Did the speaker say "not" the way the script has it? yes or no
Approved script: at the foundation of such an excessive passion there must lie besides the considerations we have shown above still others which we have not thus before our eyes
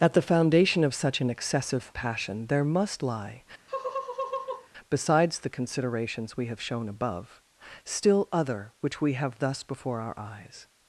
no